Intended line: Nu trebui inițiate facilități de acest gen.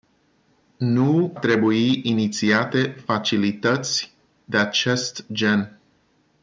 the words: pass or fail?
pass